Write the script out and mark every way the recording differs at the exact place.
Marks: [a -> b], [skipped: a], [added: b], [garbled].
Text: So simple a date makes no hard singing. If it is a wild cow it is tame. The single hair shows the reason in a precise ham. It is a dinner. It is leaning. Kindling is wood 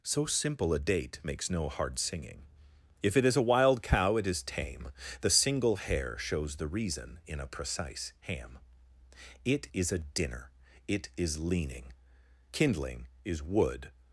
So simple a date makes no hard singing. If it is a wild cow it is tame. The single hair shows the reason in a precise ham. It is a dinner. It is leaning. Kindling is wood